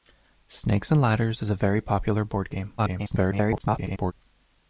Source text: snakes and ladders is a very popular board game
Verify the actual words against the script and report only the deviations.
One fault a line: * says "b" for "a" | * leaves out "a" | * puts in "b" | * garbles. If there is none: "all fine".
* garbles